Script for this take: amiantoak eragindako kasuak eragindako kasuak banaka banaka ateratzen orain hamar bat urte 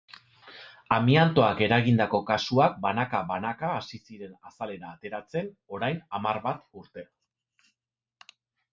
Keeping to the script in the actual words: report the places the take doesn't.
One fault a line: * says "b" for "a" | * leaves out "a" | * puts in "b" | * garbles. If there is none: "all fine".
* says "banaka banaka hasi ziren azalera" for "eragindako kasuak banaka banaka"